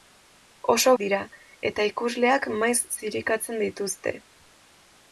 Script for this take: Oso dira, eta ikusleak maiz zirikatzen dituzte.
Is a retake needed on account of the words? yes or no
no